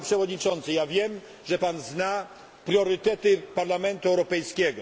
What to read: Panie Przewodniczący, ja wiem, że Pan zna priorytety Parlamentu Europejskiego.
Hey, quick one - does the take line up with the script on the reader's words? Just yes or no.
yes